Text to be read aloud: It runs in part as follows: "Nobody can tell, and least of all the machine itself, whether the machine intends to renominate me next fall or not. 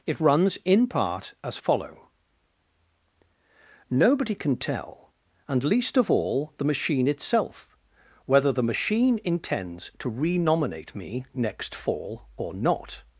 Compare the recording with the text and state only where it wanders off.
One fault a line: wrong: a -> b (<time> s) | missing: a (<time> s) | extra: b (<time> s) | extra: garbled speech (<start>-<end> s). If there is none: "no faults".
wrong: follows -> follow (1.5 s)